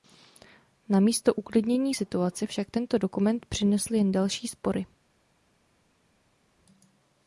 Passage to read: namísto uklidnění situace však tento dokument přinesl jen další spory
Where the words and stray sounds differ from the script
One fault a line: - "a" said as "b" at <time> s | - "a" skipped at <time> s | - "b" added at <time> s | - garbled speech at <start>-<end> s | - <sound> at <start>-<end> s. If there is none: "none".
none